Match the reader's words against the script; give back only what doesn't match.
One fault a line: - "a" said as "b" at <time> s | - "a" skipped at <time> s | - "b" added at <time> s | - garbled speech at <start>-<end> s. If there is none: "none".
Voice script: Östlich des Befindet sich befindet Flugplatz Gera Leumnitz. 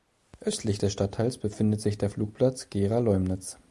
- "Stadtteils" added at 0.9 s
- "befindet" said as "der" at 2.0 s